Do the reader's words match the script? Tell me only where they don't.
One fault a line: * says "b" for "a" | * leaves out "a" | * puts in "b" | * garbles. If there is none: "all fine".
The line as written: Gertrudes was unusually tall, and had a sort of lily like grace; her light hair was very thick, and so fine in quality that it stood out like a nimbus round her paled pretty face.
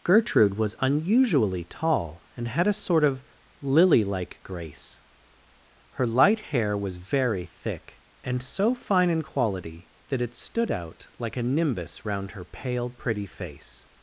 * says "Gertrude" for "Gertrudes"
* says "pale" for "paled"